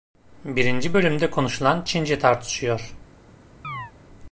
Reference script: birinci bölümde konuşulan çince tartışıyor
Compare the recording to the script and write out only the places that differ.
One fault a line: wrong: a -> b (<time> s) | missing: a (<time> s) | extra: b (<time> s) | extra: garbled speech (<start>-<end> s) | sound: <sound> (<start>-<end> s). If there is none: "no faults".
sound: chirp (3.6-3.9 s)